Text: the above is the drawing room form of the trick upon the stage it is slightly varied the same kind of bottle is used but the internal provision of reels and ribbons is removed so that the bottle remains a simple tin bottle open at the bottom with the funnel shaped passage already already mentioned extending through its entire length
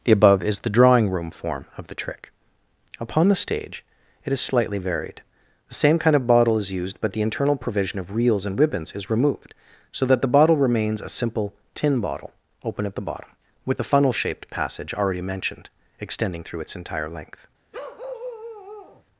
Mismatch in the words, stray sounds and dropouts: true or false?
true